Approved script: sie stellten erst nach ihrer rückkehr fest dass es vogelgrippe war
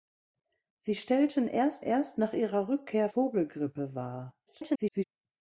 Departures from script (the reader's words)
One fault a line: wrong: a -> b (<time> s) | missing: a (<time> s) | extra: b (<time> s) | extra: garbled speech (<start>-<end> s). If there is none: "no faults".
extra: erst (1.8 s)
missing: fest dass es (3.1 s)
extra: garbled speech (4.5-5.0 s)